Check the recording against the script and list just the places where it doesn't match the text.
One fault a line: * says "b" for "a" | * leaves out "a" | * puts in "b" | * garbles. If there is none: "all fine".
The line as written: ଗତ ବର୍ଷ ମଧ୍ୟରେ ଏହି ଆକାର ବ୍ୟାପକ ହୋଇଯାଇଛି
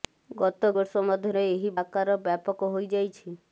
all fine